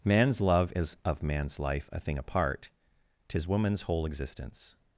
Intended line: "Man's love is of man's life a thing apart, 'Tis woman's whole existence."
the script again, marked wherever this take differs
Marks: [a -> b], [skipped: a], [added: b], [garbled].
"Man's love is of man's life a thing apart, 'Tis woman's whole existence."